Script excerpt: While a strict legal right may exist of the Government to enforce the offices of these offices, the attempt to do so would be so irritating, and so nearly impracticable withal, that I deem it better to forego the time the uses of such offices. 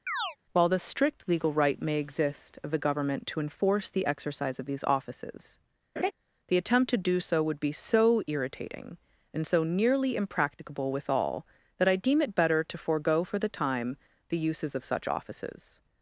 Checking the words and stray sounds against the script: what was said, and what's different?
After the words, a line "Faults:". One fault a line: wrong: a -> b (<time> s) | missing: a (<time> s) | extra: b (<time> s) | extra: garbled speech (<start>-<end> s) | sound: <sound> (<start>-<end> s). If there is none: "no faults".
While the strict legal right may exist of the Government to enforce the exercise of these offices, the attempt to do so would be so irritating, and so nearly impracticable withal, that I deem it better to forego for the time the uses of such offices.
Faults:
sound: chirp (0.1-0.4 s)
wrong: a -> the (0.7 s)
wrong: offices -> exercise (4.0 s)
sound: laugh (6.0-6.1 s)
extra: for (13.2 s)